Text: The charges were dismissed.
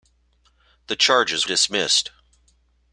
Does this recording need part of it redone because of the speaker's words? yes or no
yes